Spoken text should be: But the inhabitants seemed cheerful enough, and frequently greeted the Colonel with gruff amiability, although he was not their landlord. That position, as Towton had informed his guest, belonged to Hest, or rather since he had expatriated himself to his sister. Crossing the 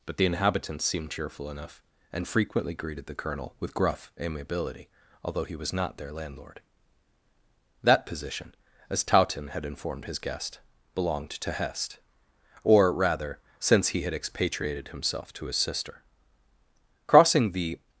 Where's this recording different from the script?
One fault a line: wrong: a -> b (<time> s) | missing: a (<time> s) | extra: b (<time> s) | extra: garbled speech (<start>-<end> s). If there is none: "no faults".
no faults